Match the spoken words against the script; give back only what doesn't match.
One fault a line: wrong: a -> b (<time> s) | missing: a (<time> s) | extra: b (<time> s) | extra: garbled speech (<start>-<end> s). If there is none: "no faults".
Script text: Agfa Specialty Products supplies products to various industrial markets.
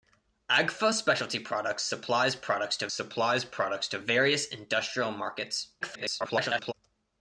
extra: supplies products to (2.9 s)
extra: garbled speech (5.8-6.7 s)